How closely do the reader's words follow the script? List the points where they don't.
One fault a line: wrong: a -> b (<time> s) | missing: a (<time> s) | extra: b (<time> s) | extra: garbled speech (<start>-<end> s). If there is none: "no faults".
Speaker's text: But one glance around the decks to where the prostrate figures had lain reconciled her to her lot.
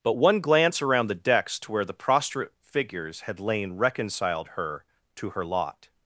no faults